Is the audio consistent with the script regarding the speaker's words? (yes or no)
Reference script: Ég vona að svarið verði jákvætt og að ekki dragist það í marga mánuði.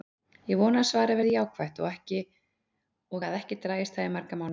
yes